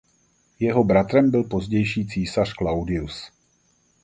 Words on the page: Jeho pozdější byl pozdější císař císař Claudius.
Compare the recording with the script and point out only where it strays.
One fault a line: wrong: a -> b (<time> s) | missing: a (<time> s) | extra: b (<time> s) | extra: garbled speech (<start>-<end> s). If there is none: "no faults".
wrong: pozdější -> bratrem (0.8 s)
missing: císař (2.5 s)